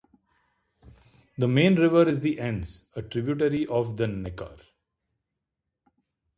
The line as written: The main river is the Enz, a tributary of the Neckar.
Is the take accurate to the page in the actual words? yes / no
yes